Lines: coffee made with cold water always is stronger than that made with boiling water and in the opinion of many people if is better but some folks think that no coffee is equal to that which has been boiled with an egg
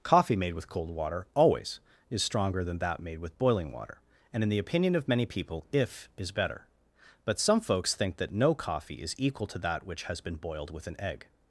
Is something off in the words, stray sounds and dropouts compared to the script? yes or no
no